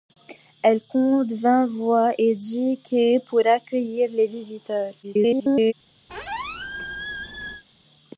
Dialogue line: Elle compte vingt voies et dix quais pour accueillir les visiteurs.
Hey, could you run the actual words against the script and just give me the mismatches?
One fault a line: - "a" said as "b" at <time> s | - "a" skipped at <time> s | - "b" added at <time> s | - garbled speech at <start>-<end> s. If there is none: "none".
- garbled speech at 5.0-5.7 s